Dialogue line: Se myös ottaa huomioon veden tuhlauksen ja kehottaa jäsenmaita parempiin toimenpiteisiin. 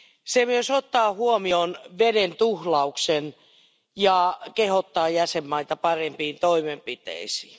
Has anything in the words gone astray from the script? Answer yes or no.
no